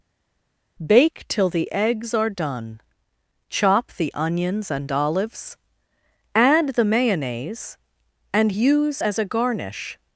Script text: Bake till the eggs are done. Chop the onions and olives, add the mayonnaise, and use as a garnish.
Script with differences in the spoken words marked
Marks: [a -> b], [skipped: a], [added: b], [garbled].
Bake till the eggs are done. Chop the onions and olives, add the mayonnaise, and use as a garnish.